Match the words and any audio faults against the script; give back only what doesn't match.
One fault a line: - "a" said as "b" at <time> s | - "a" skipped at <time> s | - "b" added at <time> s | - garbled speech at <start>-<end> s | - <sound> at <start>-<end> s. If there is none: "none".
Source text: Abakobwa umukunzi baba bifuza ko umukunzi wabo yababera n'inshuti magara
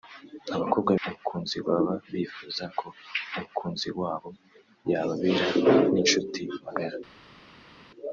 none